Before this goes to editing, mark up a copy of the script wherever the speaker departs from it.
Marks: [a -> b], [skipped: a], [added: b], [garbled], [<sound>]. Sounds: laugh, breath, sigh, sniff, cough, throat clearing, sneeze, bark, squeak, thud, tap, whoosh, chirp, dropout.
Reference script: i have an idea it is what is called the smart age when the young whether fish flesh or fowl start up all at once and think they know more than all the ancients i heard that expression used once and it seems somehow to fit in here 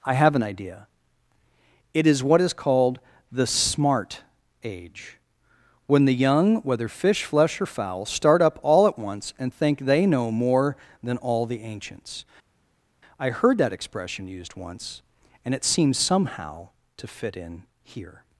i have an idea it is what is called the smart age when the young whether fish flesh or fowl start up all at once and think they know more than all the ancients i heard that expression used once and it seems somehow to fit in here